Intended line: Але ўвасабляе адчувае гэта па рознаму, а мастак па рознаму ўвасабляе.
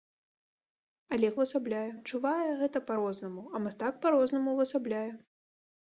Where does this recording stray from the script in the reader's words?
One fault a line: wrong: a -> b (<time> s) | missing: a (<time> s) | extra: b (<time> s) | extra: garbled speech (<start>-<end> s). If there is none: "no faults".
no faults